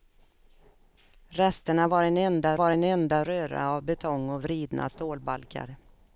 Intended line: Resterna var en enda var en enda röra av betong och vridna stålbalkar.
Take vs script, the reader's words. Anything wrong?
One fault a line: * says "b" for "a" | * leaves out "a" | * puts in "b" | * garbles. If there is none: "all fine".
all fine